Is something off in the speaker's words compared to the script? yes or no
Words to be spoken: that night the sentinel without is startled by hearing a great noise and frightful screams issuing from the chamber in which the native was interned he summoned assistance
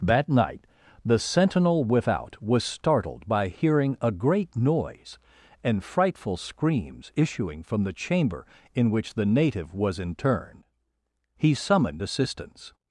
yes